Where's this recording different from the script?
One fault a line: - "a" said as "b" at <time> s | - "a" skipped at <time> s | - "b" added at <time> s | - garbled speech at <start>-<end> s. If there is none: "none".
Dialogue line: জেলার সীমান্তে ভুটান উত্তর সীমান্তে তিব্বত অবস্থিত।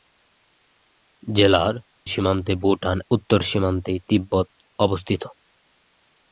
none